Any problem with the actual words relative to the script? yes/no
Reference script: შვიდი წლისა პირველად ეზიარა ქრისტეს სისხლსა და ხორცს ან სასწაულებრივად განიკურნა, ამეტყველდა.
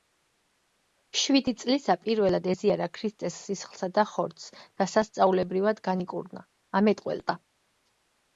yes